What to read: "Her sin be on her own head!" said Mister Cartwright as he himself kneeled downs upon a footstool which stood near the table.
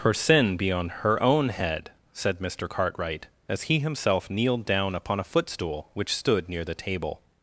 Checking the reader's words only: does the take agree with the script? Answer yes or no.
no